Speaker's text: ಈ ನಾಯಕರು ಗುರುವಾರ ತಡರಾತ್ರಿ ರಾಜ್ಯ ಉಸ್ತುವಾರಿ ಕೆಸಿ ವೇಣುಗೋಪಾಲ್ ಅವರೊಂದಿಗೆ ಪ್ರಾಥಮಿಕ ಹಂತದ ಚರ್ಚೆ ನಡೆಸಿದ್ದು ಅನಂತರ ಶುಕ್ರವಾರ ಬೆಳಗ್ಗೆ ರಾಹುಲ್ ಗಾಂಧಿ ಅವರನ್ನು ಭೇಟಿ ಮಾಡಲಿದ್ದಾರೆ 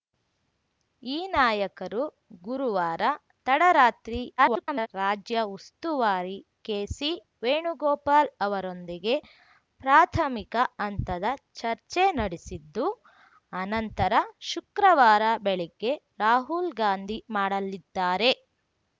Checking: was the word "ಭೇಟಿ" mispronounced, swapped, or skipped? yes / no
yes